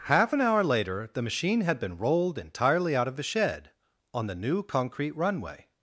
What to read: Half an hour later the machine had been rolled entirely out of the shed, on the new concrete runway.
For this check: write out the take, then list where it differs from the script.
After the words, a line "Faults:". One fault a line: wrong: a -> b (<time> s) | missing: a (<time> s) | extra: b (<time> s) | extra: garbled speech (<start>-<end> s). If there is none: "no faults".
Half an hour later the machine had been rolled entirely out of the shed, on the new concrete runway.
Faults:
no faults